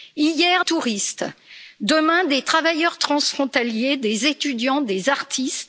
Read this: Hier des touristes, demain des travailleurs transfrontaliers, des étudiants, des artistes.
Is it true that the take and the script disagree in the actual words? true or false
true